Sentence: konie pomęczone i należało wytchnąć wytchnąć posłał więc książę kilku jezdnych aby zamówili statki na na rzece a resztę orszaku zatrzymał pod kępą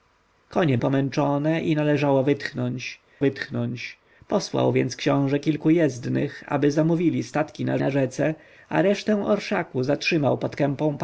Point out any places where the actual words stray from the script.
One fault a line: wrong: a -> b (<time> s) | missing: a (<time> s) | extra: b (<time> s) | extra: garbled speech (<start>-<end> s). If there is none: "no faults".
no faults